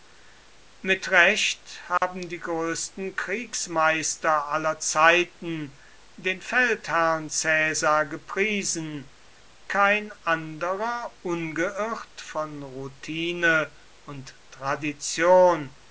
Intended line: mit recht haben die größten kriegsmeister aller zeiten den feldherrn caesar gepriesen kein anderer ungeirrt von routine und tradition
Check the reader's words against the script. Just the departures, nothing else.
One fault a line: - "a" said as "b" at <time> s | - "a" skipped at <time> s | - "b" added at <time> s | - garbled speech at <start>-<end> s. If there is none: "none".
none